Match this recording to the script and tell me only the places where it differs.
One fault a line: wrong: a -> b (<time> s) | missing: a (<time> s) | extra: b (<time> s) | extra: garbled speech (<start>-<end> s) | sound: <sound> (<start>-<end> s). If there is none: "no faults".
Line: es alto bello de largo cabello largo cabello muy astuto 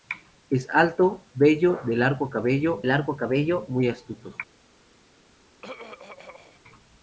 sound: throat clearing (5.6-6.6 s)